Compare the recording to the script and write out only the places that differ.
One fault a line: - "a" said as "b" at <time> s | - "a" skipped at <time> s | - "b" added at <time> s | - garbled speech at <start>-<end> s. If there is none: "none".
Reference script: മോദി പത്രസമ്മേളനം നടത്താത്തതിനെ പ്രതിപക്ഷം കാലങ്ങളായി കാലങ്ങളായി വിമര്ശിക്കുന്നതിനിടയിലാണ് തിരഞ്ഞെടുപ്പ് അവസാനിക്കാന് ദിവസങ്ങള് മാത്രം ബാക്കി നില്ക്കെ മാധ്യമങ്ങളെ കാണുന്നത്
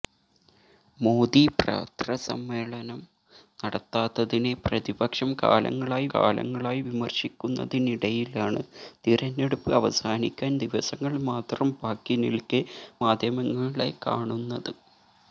none